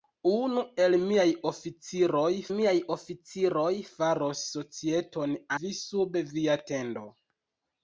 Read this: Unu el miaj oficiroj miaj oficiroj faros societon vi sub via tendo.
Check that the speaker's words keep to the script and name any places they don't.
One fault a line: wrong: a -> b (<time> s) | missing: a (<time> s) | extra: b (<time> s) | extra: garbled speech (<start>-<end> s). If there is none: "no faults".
no faults